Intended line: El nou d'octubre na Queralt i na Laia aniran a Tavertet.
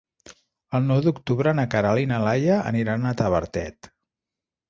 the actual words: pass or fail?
pass